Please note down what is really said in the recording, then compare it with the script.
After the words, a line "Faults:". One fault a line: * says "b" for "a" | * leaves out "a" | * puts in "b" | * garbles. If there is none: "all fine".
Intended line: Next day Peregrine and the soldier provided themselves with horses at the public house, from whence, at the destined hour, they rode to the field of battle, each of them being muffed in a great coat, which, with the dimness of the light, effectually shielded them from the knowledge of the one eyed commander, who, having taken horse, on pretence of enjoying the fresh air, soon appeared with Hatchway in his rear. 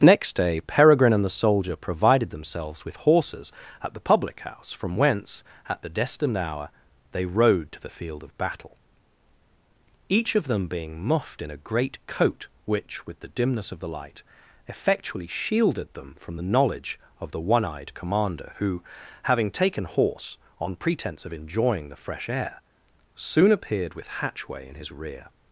Next day Peregrine and the soldier provided themselves with horses at the public house, from whence, at the destined hour, they rode to the field of battle, each of them being muffed in a great coat, which, with the dimness of the light, effectually shielded them from the knowledge of the one eyed commander, who, having taken horse, on pretence of enjoying the fresh air, soon appeared with Hatchway in his rear.
Faults:
all fine